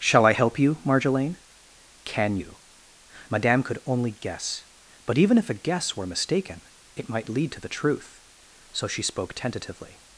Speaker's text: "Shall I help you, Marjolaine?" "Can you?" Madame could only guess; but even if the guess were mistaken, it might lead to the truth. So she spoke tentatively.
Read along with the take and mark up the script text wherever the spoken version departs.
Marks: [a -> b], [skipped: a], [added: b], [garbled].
"Shall I help you, Marjolaine?" "Can you?" Madame could only guess; but even if [the -> a] guess were mistaken, it might lead to the truth. So she spoke tentatively.